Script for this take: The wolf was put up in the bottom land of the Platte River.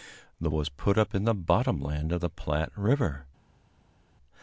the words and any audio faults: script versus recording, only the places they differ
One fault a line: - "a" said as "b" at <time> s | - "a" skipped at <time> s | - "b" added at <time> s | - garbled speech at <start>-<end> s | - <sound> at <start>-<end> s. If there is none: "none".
- "wolf" skipped at 0.5 s